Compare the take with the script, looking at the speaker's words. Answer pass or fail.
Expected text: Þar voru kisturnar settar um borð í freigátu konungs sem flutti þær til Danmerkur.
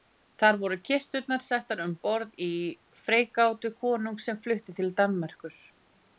fail